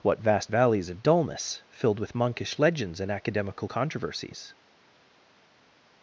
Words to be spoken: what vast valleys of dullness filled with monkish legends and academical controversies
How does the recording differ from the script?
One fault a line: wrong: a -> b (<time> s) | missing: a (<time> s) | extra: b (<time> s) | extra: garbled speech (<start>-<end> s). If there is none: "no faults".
no faults